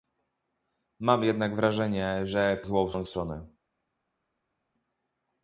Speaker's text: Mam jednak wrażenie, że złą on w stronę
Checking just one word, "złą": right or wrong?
right